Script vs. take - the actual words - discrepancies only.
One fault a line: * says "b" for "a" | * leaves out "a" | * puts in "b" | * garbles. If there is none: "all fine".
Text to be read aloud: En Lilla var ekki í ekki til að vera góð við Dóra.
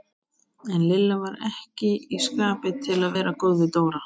* says "skapi" for "ekki"